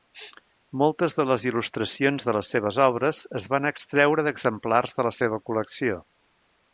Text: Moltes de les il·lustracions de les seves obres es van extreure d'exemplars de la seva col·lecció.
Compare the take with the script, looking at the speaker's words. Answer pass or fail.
pass